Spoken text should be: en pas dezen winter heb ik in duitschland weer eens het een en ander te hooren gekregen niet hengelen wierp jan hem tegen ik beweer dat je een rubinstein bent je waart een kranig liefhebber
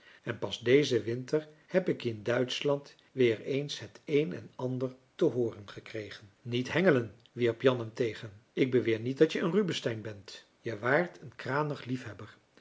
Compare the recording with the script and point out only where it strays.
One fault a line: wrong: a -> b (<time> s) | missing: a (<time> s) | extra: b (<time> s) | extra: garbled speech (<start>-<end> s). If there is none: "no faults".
extra: niet (9.0 s)